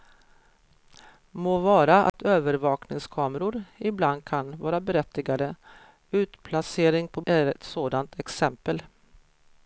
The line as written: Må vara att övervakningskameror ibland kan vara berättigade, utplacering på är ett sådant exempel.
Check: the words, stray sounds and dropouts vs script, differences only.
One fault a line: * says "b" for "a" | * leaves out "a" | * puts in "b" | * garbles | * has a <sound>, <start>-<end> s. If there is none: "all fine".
* has a dropout, 2.1-2.1 s